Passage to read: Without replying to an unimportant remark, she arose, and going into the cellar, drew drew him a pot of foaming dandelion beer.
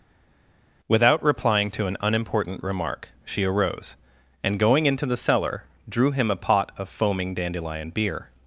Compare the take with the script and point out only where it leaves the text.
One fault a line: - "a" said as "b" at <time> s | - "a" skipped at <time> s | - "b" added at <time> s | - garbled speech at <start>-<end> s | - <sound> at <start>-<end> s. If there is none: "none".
- "drew" skipped at 6.1 s